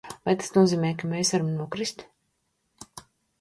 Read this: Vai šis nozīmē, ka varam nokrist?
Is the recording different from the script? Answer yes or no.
yes